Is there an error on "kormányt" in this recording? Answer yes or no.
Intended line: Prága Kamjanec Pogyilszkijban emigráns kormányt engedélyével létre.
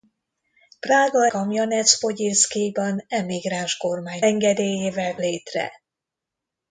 no